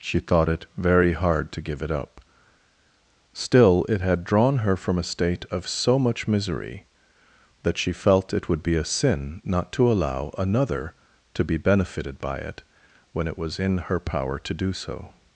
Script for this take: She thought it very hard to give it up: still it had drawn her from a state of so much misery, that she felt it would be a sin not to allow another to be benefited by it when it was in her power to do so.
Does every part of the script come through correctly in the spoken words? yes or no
yes